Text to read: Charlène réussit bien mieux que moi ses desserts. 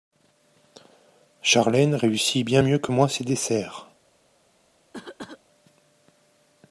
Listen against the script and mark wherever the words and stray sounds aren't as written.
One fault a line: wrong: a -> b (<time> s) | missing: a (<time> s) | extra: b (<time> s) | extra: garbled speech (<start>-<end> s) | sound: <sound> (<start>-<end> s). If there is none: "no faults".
sound: cough (4.9-5.4 s)